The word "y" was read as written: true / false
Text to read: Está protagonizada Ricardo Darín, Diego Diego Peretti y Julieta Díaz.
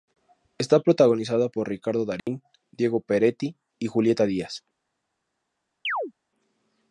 true